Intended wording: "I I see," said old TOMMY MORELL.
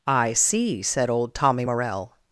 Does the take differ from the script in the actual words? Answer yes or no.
yes